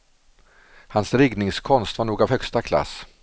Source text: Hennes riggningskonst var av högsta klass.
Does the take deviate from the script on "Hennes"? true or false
true